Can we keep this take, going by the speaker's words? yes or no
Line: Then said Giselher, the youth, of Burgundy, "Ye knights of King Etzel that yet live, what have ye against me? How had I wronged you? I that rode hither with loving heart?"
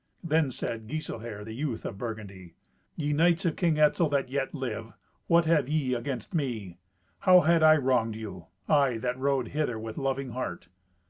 yes